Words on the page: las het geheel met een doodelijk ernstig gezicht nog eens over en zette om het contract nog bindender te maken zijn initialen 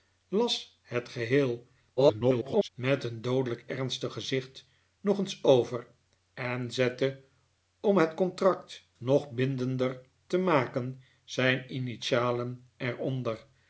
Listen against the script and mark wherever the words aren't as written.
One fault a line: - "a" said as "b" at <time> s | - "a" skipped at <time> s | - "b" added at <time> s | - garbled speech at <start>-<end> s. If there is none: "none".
- garbled speech at 2.0-2.7 s